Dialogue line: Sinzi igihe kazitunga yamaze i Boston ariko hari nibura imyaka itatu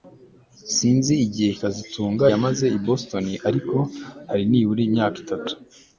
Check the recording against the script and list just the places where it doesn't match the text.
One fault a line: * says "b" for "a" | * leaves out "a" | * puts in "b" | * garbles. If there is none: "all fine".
all fine